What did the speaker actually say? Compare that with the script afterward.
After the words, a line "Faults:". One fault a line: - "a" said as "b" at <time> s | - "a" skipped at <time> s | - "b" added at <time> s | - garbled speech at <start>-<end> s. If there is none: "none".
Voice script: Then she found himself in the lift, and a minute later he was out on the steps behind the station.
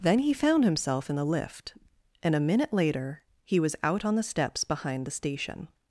Then he found himself in the lift, and a minute later he was out on the steps behind the station.
Faults:
- "she" said as "he" at 0.2 s